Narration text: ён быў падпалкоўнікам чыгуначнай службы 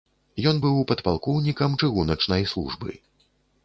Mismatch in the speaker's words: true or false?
false